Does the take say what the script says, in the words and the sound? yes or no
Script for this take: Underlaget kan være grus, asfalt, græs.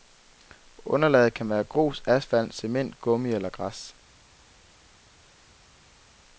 no